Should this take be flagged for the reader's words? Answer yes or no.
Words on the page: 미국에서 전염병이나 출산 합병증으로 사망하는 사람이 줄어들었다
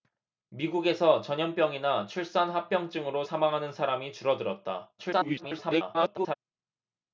yes